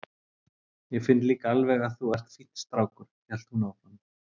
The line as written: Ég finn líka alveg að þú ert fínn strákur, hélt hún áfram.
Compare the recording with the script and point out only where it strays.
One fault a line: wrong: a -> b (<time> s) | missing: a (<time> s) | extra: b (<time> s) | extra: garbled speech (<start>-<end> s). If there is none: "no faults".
no faults